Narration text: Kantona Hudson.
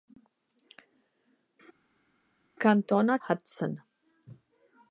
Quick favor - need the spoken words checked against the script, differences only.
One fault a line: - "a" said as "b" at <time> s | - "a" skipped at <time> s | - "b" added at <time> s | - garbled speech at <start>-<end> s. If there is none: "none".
none